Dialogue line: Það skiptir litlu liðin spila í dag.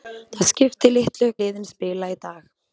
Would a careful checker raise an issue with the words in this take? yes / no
no